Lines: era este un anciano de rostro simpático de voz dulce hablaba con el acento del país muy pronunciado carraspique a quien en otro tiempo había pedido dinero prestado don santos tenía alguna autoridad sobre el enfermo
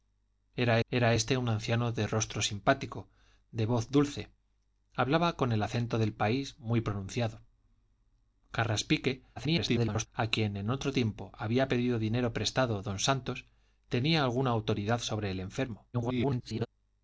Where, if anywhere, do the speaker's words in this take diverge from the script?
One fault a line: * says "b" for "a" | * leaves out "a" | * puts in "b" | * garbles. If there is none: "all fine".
* puts in "era"
* garbles
* garbles